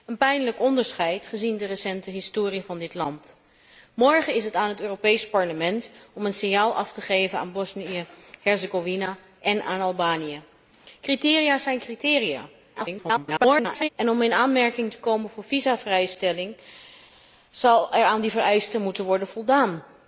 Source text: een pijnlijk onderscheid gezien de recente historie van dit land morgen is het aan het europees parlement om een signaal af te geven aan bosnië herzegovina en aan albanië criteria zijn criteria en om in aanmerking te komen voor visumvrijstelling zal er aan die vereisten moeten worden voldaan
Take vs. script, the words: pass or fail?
fail